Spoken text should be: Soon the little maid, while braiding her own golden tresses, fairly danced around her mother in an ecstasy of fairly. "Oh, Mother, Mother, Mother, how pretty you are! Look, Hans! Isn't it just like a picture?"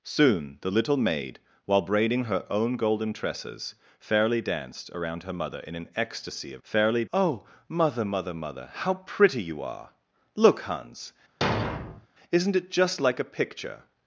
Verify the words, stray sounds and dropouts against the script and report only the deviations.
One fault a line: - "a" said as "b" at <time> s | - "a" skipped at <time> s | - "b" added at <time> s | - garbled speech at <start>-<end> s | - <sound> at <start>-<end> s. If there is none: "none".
- thud at 11.4-12.1 s